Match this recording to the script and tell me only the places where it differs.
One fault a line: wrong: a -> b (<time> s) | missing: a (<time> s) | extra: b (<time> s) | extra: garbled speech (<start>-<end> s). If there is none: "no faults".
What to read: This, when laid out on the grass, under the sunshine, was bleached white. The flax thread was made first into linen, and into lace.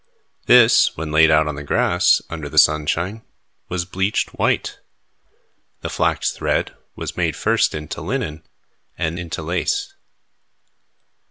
no faults